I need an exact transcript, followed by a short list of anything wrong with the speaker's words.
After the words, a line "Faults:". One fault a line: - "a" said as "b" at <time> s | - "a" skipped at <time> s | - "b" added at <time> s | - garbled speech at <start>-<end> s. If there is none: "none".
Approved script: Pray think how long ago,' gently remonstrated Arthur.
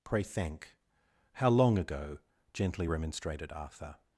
Pray thank how long ago,' gently remonstrated Arthur.
Faults:
- "think" said as "thank" at 0.2 s